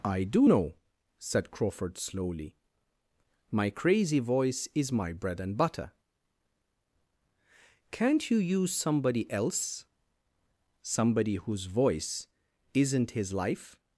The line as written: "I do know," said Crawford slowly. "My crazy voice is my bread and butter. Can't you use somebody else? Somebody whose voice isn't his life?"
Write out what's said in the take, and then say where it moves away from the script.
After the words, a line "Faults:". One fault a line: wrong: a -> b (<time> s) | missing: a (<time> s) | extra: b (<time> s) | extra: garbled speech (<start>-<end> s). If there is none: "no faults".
"I do know," said Crawford slowly. "My crazy voice is my bread and butter. Can't you use somebody else? Somebody whose voice isn't his life?"
Faults:
no faults